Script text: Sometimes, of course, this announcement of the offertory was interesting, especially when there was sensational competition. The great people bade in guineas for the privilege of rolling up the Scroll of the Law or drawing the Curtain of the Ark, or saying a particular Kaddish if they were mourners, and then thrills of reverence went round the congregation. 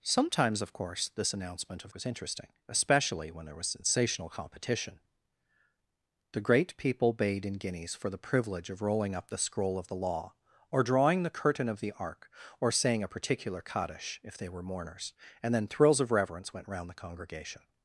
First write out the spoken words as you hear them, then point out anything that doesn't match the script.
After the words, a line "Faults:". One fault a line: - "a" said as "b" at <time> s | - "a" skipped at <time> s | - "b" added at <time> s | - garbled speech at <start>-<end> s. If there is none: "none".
Sometimes, of course, this announcement of was interesting, especially when there was sensational competition. The great people bade in guineas for the privilege of rolling up the Scroll of the Law or drawing the Curtain of the Ark, or saying a particular Kaddish if they were mourners, and then thrills of reverence went round the congregation.
Faults:
- "the offertory" skipped at 1.9 s